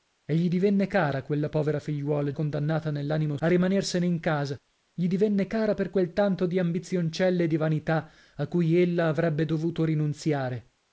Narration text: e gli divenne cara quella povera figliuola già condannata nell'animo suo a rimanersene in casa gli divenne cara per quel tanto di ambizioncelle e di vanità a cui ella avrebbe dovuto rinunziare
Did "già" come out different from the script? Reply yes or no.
yes